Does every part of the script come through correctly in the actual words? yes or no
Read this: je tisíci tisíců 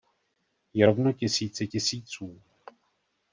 no